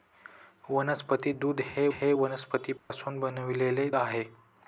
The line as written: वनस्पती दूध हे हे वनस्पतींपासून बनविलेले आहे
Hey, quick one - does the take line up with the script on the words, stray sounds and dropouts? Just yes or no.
no